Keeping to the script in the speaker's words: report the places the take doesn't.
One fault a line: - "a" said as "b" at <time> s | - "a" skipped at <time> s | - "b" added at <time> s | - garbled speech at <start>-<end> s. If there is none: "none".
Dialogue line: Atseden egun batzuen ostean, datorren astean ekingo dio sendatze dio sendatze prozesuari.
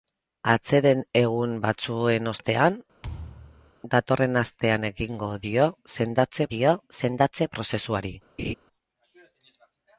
none